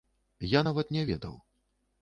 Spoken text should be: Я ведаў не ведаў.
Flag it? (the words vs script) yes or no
yes